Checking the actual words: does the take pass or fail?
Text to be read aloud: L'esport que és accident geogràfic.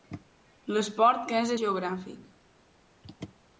fail